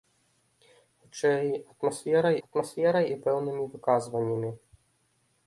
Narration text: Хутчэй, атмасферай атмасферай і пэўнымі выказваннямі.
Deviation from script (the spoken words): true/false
false